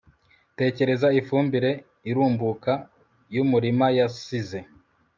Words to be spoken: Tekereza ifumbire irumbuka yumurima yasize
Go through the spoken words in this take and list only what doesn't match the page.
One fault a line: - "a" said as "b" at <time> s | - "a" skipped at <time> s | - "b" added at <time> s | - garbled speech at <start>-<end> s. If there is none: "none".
none